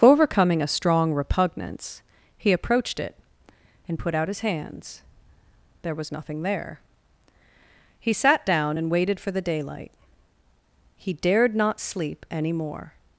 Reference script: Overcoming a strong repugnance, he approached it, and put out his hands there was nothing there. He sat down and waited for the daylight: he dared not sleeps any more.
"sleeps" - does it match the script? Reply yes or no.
no